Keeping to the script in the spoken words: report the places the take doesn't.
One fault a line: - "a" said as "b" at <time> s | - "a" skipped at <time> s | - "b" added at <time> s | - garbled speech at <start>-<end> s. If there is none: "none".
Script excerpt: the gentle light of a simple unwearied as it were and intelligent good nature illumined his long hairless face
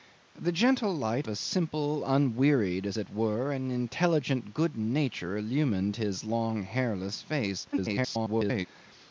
- "of" skipped at 1.3 s
- garbled speech at 7.7-8.7 s